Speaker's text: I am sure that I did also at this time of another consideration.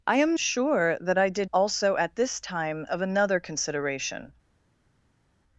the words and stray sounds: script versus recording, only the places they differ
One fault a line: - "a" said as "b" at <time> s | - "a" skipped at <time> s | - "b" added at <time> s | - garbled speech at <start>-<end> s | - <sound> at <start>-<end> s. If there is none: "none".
none